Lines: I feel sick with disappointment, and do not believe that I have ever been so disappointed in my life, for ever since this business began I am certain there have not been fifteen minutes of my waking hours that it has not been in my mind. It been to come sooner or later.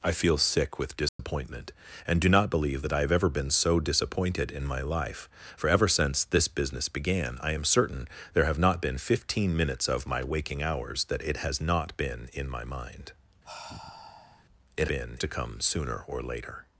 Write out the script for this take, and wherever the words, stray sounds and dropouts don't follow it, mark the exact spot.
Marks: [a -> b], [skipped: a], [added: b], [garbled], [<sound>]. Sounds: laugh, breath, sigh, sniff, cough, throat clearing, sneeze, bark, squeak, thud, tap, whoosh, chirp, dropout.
I feel sick with disappointment, [dropout] and do not believe that I have ever been so disappointed in my life, for ever since this business began I am certain there have not been fifteen minutes of my waking hours that it has not been in my mind. [sigh] It been to come sooner or later.